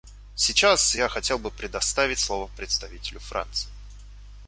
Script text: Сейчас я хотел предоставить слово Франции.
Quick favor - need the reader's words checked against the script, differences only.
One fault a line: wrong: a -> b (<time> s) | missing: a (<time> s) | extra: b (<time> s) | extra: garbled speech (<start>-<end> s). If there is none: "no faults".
extra: бы (1.4 s)
extra: представителю (2.5 s)